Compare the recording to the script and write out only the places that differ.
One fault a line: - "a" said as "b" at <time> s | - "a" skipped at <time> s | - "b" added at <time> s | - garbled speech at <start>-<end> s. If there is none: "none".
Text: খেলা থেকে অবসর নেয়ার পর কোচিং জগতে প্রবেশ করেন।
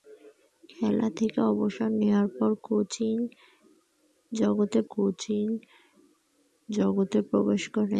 - "কোচিং জগতে" added at 4.9 s